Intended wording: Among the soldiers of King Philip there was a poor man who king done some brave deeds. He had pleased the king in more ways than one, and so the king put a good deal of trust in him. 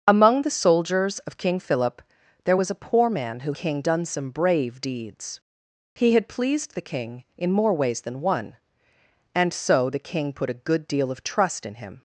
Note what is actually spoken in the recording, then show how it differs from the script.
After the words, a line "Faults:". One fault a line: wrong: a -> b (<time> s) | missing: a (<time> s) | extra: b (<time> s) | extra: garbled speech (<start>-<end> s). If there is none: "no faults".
Among the soldiers of King Philip there was a poor man who king done some brave deeds. He had pleased the king in more ways than one, and so the king put a good deal of trust in him.
Faults:
no faults